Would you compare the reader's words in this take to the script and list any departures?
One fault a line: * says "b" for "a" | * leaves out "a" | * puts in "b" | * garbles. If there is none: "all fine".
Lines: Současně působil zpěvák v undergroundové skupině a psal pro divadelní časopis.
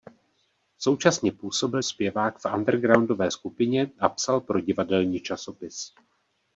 all fine